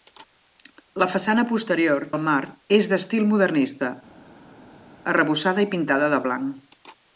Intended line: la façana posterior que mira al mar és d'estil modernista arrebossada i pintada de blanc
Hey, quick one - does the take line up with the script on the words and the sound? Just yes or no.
no